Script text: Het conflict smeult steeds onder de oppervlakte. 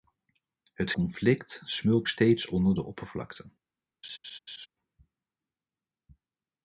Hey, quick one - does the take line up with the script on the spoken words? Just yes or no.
yes